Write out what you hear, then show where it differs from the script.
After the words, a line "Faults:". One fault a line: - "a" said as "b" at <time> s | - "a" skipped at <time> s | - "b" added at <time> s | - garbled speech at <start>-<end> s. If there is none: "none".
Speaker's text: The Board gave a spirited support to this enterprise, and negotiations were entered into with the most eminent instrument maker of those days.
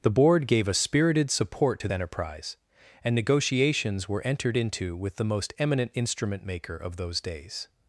The Board gave a spirited support to enterprise, and negotiations were entered into with the most eminent instrument maker of those days.
Faults:
- "this" skipped at 1.9 s